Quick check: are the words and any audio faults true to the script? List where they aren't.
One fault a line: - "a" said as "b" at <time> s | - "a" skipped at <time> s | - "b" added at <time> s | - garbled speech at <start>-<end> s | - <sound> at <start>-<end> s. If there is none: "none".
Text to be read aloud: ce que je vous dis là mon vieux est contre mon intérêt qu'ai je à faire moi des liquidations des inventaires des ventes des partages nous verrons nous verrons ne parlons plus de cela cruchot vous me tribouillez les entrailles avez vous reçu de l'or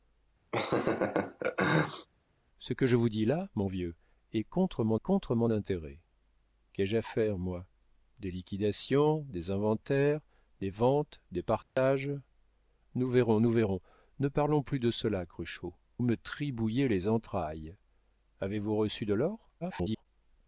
- laugh at 0.5-2.1 s
- "contre mon" added at 5.0 s
- dropout at 11.6-11.8 s
- "vous" skipped at 15.7 s
- garbled speech at 19.6-20.1 s